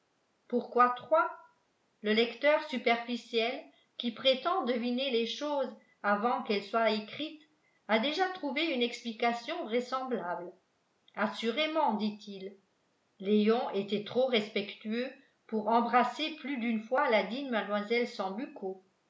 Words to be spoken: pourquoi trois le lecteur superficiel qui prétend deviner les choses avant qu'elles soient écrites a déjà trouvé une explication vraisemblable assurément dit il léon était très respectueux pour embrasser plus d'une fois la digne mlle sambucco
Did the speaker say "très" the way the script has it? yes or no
no